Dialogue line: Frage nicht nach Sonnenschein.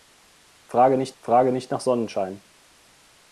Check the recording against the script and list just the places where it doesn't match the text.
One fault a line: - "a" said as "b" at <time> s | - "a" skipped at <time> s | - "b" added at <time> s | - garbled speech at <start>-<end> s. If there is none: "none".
- "frage nicht" added at 1.2 s